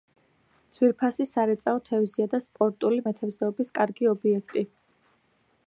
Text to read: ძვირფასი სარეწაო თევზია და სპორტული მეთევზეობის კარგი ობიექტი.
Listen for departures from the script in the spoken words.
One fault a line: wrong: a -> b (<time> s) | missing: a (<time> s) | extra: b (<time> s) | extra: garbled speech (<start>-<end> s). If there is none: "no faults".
no faults